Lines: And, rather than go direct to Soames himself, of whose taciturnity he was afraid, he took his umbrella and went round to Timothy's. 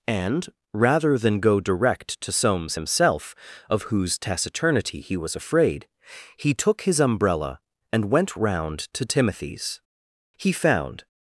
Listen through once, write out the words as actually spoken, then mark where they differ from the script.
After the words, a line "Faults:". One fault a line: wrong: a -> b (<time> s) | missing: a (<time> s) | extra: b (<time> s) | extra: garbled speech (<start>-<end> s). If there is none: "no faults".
And, rather than go direct to Soames himself, of whose taciturnity he was afraid, he took his umbrella and went round to Timothy's. He found
Faults:
extra: He found (10.4 s)